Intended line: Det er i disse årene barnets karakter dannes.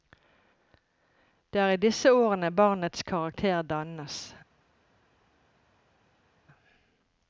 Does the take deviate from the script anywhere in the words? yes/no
no